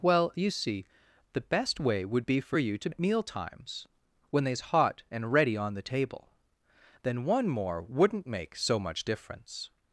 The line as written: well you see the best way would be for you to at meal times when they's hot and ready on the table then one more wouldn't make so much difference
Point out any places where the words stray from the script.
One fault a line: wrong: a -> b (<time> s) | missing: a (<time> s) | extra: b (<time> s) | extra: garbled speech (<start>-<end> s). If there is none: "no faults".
no faults